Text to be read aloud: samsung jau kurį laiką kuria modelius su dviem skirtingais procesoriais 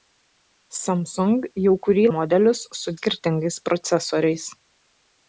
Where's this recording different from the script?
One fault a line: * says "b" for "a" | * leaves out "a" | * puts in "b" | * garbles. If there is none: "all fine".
* leaves out "laiką kuria"
* leaves out "dviem"